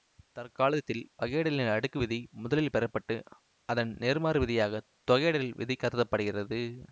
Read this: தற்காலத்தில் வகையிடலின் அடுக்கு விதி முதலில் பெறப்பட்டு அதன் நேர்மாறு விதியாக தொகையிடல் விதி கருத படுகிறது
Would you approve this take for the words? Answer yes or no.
yes